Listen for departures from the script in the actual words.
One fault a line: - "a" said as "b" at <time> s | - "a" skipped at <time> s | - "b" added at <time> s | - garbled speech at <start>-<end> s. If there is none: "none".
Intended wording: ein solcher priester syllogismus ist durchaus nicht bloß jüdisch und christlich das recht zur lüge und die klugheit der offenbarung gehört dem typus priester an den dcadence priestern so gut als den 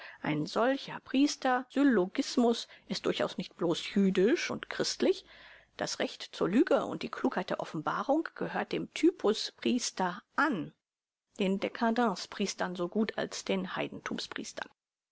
none